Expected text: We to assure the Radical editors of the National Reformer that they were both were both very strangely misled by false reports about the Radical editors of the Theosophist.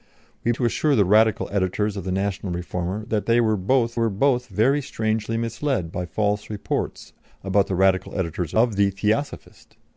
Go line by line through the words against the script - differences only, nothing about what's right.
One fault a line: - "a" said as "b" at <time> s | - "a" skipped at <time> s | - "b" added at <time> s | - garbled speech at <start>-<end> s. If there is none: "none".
none